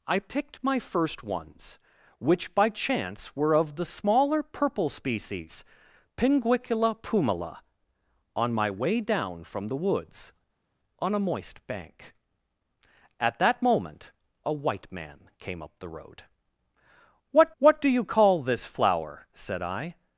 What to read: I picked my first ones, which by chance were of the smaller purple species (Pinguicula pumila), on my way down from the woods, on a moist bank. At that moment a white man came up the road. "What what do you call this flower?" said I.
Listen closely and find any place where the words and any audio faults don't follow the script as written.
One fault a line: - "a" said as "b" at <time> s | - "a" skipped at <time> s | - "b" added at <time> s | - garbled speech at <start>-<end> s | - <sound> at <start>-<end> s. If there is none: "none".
none